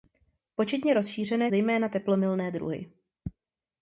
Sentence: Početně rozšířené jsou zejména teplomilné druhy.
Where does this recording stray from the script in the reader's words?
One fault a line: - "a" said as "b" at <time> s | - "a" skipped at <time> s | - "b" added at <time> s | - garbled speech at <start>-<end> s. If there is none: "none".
- "jsou" skipped at 1.5 s